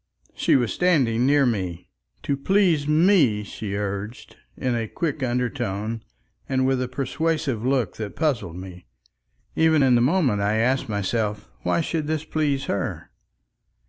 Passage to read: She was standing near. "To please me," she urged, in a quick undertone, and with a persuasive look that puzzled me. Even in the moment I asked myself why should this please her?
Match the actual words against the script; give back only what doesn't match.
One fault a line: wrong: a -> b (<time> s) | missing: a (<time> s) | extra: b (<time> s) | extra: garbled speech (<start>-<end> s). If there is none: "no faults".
extra: me (1.4 s)